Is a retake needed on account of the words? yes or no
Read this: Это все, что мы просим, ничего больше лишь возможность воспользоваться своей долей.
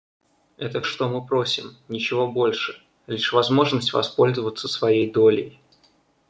yes